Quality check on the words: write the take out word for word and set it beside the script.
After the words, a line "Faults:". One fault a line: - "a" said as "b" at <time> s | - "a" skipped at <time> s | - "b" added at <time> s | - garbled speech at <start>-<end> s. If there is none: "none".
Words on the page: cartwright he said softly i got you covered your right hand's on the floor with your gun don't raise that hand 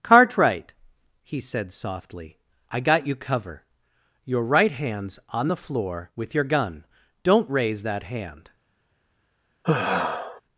cartwright he said softly i got you cover your right hand's on the floor with your gun don't raise that hand
Faults:
- "covered" said as "cover" at 3.1 s